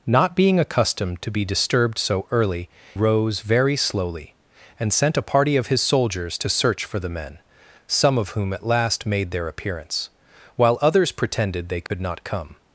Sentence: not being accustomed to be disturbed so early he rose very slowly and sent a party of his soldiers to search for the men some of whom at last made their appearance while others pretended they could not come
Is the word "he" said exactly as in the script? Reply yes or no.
no